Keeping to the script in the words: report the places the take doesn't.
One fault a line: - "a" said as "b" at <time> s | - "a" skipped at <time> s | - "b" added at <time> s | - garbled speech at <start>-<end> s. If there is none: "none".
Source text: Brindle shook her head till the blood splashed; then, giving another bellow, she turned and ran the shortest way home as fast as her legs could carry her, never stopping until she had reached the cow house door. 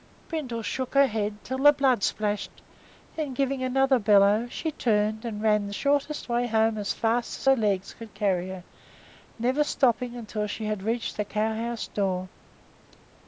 none